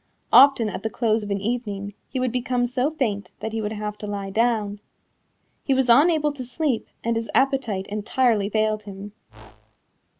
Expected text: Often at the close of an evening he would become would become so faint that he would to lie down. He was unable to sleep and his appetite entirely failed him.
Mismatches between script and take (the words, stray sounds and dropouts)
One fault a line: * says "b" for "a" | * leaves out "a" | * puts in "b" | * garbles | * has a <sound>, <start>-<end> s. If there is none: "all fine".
* leaves out "would become"
* puts in "have"
* has a whoosh, 9.3-9.8 s